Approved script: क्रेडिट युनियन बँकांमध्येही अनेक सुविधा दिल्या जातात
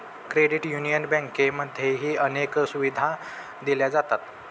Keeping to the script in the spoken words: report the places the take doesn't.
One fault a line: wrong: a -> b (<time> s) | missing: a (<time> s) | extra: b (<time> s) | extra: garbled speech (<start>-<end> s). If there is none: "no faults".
no faults